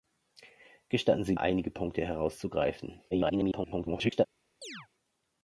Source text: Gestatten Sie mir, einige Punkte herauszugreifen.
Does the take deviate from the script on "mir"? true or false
true